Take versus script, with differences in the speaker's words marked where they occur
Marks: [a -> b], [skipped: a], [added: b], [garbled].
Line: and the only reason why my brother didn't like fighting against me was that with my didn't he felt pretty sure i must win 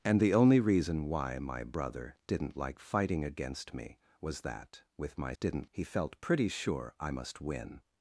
and the only reason why my brother didn't like fighting against me was that with my didn't he felt pretty sure i must win